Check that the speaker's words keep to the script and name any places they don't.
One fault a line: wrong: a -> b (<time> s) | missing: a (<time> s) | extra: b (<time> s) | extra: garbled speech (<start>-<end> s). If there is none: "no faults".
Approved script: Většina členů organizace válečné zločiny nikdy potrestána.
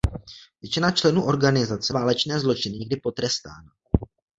no faults